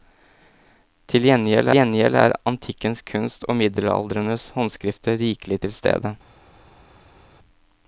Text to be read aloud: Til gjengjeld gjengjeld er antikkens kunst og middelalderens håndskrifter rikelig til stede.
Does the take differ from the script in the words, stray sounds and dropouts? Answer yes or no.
no